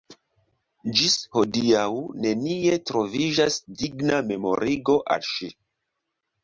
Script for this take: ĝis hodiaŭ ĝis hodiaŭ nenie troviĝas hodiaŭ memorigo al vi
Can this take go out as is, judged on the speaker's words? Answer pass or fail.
fail